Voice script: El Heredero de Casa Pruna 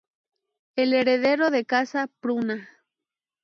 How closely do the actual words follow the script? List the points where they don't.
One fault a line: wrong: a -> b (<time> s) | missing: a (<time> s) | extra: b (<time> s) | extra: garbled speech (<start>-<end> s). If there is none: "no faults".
no faults